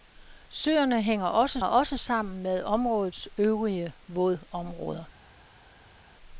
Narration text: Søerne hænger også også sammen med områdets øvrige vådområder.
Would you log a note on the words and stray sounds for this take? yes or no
no